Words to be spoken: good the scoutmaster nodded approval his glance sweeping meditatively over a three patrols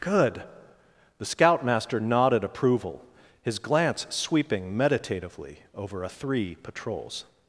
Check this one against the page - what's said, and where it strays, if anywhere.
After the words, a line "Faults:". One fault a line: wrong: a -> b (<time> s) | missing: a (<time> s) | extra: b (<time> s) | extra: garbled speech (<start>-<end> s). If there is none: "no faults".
good the scoutmaster nodded approval his glance sweeping meditatively over a three patrols
Faults:
no faults